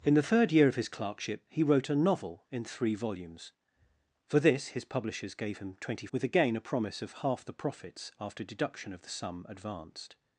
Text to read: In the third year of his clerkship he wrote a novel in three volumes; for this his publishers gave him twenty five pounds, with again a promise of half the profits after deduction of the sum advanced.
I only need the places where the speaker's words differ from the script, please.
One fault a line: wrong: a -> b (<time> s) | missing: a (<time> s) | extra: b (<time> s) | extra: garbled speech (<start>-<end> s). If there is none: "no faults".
missing: five pounds (6.1 s)